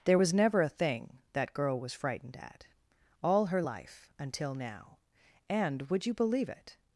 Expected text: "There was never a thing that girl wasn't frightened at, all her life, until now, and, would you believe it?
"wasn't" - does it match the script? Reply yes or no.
no